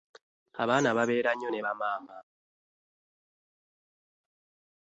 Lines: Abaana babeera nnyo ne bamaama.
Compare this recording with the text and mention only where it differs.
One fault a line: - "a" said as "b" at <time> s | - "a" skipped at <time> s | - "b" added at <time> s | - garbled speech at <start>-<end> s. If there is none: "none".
none